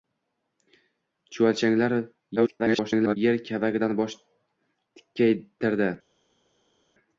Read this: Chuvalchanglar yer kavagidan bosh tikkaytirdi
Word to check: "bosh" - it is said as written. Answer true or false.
true